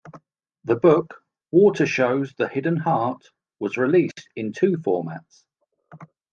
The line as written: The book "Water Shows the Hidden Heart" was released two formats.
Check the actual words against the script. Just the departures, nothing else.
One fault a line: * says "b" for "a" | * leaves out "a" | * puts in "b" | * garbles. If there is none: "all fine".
* puts in "in"